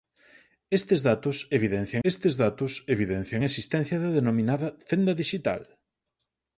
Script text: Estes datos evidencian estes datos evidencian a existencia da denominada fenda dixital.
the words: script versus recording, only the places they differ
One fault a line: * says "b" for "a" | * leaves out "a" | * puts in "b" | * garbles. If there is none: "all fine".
all fine